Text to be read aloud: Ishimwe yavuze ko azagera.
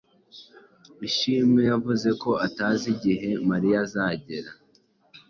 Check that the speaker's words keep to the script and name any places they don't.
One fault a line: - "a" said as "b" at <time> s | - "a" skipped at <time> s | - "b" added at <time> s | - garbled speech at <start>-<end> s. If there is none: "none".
- "atazi igihe Mariya" added at 2.5 s